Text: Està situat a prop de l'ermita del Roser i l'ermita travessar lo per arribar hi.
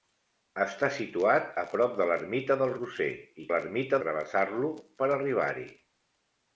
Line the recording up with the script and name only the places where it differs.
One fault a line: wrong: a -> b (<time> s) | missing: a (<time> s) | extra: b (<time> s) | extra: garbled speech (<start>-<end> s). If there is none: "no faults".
no faults